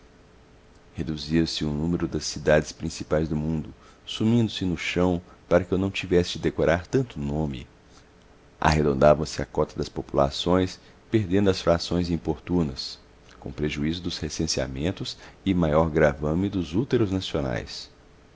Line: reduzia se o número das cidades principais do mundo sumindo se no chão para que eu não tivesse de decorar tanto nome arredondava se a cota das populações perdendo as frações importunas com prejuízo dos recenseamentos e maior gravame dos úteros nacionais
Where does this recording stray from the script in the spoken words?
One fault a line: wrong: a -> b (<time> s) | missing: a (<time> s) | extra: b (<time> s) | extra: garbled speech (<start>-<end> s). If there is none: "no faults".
no faults